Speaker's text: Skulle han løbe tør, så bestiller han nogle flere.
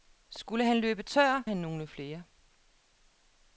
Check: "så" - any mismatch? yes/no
yes